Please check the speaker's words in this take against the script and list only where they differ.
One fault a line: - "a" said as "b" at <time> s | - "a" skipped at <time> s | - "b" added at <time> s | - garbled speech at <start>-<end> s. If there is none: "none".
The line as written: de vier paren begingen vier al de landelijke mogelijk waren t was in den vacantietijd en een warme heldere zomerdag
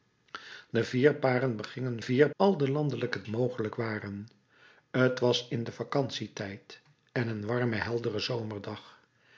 none